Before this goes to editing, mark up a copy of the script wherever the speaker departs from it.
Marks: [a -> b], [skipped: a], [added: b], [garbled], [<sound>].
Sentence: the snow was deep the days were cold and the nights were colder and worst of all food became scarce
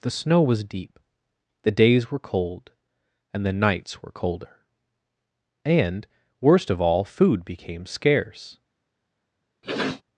the snow was deep the days were cold and the nights were colder and worst of all food became scarce [sniff]